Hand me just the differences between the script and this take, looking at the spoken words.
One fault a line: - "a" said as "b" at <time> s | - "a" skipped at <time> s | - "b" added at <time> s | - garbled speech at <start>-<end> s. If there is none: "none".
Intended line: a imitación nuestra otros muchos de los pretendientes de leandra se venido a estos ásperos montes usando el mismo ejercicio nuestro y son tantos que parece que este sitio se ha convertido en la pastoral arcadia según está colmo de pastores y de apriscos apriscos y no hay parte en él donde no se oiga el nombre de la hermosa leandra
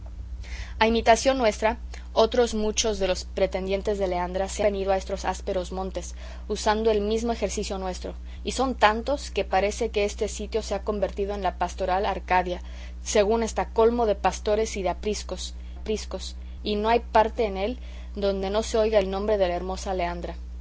none